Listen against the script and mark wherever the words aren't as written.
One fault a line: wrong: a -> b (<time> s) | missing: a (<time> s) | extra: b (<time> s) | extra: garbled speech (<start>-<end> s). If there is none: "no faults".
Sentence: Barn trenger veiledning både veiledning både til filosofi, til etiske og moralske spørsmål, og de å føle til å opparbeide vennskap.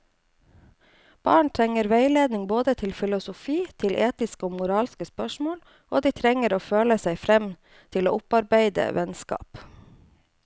missing: veiledning både (2.7 s)
extra: trenger (6.2 s)
extra: seg frem (7.0 s)